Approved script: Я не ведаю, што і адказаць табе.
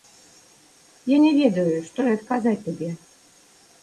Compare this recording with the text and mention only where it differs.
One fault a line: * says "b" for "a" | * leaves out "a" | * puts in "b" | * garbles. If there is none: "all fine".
all fine